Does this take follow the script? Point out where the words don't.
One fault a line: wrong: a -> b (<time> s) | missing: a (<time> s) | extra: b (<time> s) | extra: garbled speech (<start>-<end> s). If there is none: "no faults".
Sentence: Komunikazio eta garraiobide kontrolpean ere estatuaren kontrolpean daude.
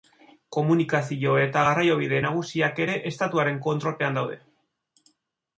wrong: kontrolpean -> nagusiak (2.3 s)